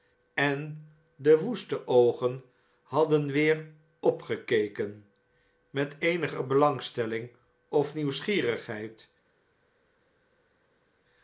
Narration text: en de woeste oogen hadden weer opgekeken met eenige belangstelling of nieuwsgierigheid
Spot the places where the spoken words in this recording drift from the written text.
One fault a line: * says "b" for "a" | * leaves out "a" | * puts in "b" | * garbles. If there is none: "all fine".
all fine